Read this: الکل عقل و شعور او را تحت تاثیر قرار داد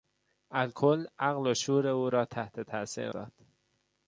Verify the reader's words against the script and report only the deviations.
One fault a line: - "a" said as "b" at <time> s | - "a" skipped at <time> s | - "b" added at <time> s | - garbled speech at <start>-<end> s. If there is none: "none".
- "قرار" skipped at 3.1 s